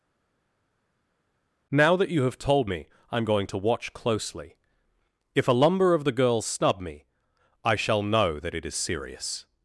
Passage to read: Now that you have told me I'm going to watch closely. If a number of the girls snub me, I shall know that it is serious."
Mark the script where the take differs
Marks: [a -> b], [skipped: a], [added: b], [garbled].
Now that you have told me I'm going to watch closely. If a [number -> lumber] of the girls snub me, I shall know that it is serious."